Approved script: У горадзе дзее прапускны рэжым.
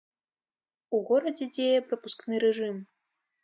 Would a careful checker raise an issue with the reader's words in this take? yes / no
no